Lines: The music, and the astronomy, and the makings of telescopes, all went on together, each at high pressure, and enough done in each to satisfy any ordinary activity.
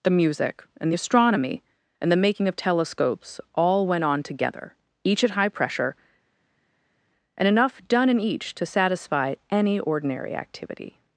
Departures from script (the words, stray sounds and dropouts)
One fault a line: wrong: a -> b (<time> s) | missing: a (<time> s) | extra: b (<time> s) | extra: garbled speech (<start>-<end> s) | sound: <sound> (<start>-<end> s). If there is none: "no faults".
wrong: makings -> making (2.2 s)